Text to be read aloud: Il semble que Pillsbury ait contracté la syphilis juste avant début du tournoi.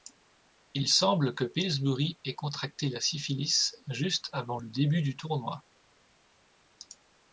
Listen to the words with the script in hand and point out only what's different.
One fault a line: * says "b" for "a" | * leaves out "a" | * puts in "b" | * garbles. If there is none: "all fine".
* puts in "le"